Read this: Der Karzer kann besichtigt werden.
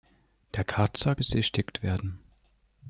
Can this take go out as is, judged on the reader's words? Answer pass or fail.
fail